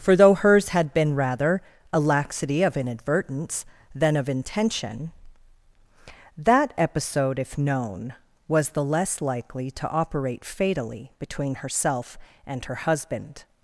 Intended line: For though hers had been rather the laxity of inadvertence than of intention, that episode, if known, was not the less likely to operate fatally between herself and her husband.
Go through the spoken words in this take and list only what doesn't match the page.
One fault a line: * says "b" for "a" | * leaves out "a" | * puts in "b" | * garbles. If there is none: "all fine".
* says "a" for "the"
* leaves out "not"